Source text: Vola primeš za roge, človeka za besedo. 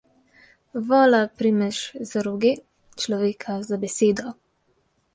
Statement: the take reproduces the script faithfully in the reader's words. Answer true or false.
true